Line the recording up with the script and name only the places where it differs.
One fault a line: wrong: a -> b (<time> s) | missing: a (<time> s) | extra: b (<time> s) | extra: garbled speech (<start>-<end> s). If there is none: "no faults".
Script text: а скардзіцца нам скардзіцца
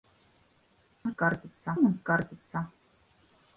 no faults